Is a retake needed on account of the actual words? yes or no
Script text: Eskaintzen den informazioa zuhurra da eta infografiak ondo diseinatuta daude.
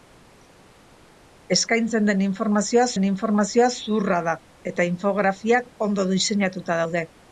yes